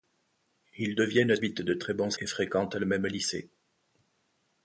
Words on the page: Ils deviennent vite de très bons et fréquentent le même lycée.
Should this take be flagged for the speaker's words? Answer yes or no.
no